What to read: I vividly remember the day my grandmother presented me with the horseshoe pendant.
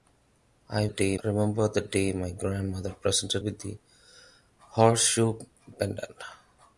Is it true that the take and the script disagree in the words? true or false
true